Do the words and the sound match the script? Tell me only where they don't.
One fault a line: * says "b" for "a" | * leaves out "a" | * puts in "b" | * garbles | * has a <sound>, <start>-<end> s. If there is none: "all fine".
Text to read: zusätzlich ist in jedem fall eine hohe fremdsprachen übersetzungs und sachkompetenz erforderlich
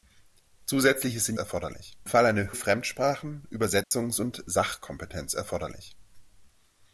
* says "erforderlich" for "jedem"
* leaves out "hohe"
* has a dropout, 3.8-3.9 s